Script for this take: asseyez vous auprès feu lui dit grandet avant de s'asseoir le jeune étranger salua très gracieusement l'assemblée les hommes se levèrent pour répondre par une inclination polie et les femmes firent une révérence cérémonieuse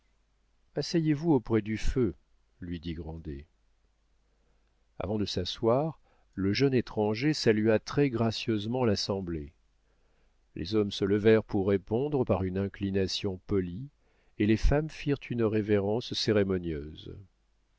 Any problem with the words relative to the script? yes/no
yes